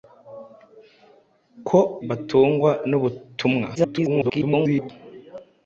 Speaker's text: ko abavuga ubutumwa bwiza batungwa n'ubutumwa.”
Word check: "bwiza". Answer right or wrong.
wrong